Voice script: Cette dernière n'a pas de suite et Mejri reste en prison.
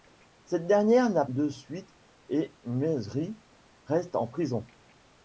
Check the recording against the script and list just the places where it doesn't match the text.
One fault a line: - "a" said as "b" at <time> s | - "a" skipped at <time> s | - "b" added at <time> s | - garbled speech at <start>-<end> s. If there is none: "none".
- "pas" skipped at 1.2 s